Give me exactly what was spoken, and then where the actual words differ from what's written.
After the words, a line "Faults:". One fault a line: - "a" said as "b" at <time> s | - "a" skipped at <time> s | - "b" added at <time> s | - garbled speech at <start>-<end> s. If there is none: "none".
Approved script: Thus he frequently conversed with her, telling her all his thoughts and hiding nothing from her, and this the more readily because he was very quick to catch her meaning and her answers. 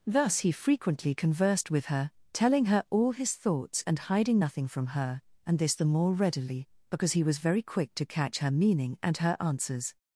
Thus he frequently conversed with her, telling her all his thoughts and hiding nothing from her, and this the more readily because he was very quick to catch her meaning and her answers.
Faults:
none